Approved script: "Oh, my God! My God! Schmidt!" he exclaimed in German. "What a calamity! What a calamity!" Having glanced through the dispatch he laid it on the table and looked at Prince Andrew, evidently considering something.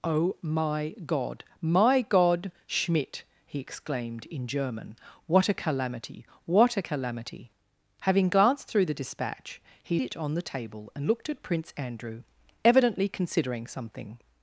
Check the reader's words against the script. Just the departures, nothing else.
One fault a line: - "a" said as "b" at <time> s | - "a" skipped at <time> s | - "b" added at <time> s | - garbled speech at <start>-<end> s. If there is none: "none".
- "laid" skipped at 10.0 s